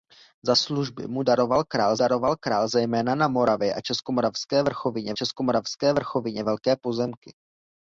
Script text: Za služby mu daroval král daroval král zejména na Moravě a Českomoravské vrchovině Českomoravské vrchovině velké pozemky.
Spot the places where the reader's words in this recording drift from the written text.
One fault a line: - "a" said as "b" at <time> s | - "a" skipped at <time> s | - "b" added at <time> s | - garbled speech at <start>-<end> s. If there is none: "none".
none